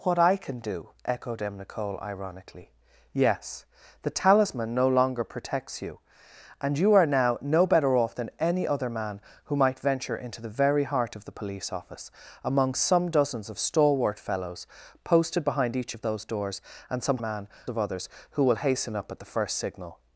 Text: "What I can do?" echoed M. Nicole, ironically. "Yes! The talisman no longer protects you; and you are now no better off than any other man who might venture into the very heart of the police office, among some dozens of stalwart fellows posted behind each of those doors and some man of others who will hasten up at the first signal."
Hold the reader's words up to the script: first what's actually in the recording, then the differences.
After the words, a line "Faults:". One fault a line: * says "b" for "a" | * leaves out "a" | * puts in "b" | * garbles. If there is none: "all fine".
"What I can do?" echoed M. Nicole, ironically. "Yes! The talisman no longer protects you; and you are now no better off than any other man who might venture into the very heart of the police office, among some dozens of stalwart fellows posted behind each of those doors and some man of others who will hasten up at the first signal."
Faults:
all fine